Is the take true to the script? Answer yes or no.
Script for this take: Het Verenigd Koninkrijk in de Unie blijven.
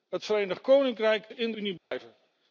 yes